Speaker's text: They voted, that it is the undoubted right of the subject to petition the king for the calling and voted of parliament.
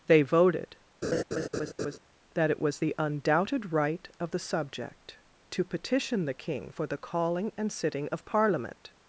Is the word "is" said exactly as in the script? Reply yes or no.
no